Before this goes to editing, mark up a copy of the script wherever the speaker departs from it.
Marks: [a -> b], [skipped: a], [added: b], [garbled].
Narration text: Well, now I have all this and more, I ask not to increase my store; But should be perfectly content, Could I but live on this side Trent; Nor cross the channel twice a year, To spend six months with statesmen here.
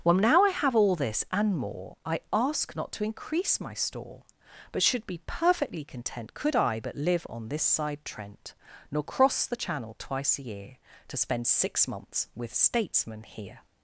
Well, now I have all this and more, I ask not to increase my store; But should be perfectly content, Could I but live on this side Trent; Nor cross the channel twice a year, To spend six months with statesmen here.